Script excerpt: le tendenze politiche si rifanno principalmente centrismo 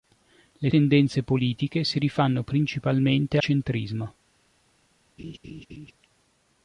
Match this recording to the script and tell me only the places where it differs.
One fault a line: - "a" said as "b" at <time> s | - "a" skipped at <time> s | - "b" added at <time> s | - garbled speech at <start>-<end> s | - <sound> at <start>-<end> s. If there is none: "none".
- laugh at 5.2-5.9 s